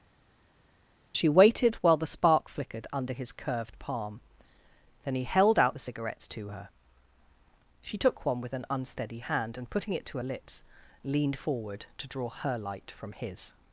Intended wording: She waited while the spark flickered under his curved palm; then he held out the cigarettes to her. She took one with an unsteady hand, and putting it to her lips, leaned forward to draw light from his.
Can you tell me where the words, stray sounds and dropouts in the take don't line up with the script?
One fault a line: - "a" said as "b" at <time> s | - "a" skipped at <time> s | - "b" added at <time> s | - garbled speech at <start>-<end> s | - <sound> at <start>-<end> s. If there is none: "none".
- "her" added at 12.3 s